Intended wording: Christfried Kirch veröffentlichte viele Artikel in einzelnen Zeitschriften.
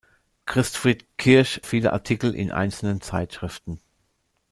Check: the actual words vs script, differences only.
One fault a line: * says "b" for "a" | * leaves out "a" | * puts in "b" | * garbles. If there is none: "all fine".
* leaves out "veröffentlichte"